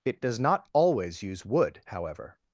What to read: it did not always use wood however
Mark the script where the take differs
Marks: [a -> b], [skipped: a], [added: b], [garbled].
it [did -> does] not always use wood however